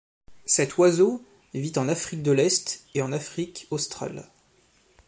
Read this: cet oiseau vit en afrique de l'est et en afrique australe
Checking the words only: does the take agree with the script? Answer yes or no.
yes